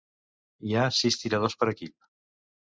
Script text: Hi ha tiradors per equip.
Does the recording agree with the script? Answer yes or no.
no